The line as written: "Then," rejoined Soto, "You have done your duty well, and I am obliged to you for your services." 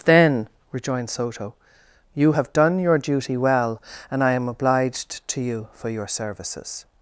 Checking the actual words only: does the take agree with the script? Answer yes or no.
yes